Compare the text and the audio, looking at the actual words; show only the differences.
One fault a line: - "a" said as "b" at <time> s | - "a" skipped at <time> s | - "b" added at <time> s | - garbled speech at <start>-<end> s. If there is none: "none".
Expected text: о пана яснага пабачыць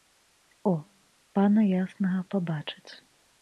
none